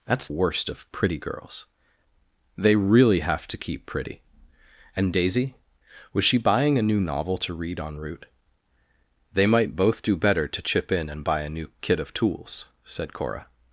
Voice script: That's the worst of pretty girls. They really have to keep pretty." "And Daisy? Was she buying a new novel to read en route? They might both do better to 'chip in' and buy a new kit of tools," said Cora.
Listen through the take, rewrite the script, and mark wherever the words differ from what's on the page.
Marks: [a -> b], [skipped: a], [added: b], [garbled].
That's [skipped: the] worst of pretty girls. They really have to keep pretty." "And Daisy? Was she buying a new novel to read en route? They might both do better to 'chip in' and buy a new kit of tools," said Cora.